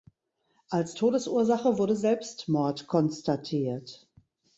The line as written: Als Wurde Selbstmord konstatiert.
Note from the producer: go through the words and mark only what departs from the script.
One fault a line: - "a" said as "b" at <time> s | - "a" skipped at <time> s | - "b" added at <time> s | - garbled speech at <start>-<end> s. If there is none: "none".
- "Todesursache" added at 0.9 s